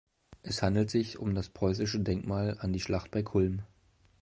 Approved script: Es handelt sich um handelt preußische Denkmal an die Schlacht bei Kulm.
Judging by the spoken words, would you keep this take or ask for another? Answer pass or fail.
fail